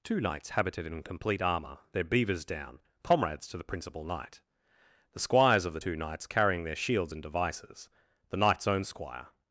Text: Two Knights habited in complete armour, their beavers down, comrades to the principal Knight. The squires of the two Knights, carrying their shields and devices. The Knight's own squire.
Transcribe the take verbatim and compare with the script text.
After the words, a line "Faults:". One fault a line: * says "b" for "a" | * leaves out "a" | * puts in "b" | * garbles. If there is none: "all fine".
Two Knights habited in complete armour, their beavers down, comrades to the principal Knight. The squires of the two Knights, carrying their shields and devices. The Knight's own squire.
Faults:
all fine